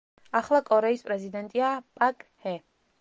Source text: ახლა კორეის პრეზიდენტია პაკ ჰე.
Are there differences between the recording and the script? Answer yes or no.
no